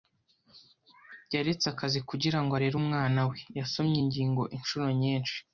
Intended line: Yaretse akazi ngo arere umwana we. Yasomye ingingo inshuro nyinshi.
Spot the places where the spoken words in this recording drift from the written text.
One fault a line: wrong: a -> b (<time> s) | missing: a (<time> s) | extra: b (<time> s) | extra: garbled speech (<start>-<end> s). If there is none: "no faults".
extra: kugira (2.1 s)